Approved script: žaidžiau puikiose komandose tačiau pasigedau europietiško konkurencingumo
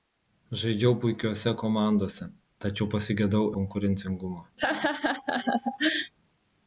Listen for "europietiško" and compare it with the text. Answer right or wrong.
wrong